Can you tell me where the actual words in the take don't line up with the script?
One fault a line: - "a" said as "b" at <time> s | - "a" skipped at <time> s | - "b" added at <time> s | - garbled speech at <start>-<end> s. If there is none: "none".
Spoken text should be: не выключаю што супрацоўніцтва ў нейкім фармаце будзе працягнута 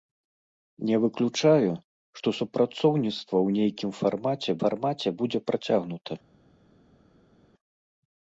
- "фармаце" added at 4.6 s